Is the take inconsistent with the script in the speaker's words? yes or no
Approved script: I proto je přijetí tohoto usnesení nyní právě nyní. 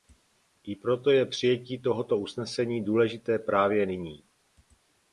yes